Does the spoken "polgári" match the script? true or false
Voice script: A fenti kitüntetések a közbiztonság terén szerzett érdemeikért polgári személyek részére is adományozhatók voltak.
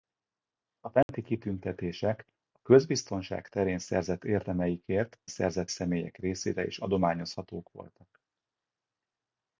false